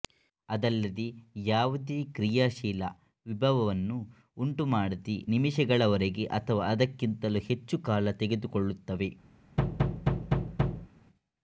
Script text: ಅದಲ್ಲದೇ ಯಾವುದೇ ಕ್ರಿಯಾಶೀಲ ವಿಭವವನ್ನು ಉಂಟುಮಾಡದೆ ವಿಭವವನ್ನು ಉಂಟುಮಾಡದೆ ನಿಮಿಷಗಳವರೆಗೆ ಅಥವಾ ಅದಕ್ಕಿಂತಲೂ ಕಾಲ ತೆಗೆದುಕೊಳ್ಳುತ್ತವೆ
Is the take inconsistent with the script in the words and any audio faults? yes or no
yes